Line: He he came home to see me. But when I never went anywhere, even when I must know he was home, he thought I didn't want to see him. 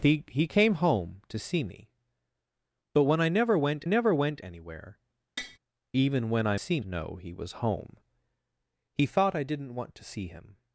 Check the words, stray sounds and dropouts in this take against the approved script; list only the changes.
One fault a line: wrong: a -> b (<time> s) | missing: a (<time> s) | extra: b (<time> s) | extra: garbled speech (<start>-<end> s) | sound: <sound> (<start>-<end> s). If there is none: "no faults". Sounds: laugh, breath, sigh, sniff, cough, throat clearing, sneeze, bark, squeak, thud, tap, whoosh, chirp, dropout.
extra: never went (3.9 s)
sound: tap (5.4-5.6 s)
wrong: must -> see (6.5 s)